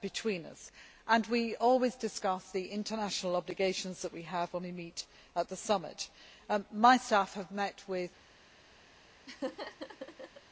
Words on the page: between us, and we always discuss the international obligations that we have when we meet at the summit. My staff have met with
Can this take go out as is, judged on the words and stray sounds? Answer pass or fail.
fail